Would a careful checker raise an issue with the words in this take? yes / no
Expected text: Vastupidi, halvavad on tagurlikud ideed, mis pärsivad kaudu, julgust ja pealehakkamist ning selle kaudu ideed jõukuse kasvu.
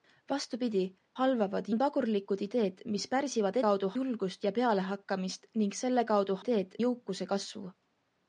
no